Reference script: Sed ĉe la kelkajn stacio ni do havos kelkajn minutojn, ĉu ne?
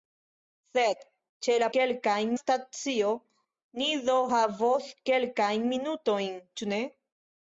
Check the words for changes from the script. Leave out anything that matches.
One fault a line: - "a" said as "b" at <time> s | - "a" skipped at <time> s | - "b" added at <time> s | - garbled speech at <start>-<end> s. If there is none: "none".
none